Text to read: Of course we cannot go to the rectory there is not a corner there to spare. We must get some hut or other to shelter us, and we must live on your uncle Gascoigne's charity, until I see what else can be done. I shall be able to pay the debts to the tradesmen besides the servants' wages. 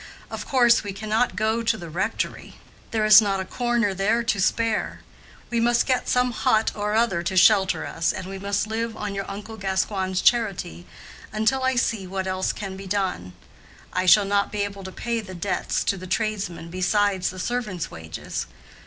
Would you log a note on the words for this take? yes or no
yes